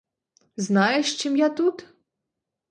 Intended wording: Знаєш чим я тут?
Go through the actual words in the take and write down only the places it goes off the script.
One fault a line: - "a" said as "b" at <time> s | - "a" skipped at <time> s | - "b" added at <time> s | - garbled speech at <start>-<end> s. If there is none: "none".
none